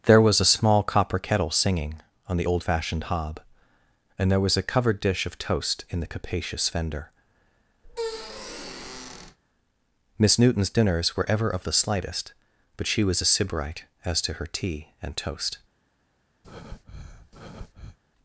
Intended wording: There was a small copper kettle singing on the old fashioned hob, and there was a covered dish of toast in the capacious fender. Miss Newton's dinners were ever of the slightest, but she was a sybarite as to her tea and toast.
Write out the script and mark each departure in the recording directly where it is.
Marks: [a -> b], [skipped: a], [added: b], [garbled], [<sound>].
There was a small copper kettle singing on the old fashioned hob, and there was a covered dish of toast in the capacious fender. [squeak] Miss Newton's dinners were ever of the slightest, but she was a sybarite as to her tea and toast. [breath]